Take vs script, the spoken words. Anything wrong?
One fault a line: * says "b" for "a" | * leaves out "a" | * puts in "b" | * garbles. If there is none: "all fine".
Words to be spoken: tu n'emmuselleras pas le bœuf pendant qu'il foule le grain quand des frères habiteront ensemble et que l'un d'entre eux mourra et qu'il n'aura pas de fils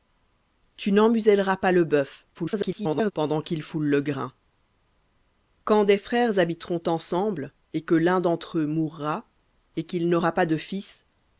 * garbles